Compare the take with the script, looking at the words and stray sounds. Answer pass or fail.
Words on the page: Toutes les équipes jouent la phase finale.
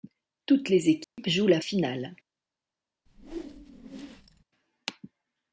fail